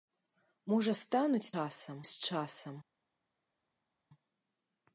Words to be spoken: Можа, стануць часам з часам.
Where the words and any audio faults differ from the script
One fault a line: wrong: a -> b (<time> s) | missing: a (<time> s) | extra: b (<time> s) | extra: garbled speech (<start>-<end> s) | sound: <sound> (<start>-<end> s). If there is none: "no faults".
no faults